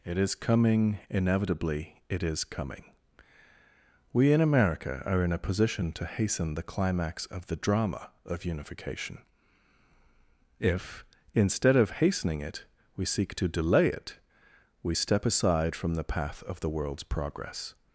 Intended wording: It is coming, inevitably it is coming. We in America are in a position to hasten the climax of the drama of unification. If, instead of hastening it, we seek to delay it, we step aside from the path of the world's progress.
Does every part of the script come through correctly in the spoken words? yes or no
yes